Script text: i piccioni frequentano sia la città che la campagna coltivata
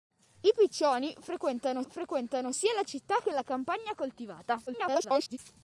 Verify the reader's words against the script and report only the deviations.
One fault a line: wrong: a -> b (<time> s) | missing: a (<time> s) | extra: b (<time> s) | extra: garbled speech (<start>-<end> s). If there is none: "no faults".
extra: frequentano (1.9 s)
extra: garbled speech (4.7-5.4 s)